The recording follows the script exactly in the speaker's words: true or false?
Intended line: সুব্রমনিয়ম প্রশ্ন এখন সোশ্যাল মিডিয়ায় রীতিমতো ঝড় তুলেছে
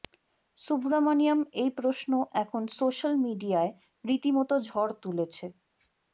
false